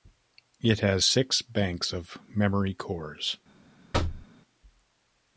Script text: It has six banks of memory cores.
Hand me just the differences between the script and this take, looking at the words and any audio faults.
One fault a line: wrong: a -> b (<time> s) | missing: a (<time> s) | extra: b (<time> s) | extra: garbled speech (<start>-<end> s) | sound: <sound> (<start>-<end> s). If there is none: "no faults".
sound: thud (3.9-4.3 s)